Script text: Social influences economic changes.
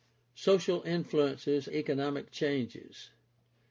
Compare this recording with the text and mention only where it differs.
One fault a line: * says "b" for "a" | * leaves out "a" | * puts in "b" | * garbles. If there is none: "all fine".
all fine